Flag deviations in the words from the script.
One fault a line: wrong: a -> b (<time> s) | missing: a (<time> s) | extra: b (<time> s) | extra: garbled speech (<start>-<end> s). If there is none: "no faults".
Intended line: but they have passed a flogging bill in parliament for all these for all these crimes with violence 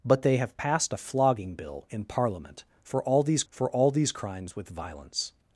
no faults